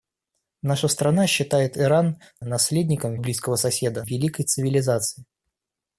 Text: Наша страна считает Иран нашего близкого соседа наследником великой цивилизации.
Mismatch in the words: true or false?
true